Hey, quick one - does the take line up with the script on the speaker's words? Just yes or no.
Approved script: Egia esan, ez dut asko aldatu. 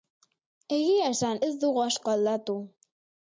no